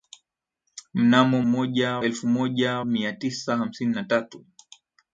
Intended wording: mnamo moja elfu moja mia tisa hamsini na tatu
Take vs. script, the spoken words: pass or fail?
pass